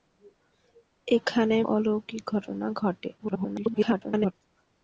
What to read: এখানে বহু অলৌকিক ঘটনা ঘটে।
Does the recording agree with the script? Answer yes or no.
no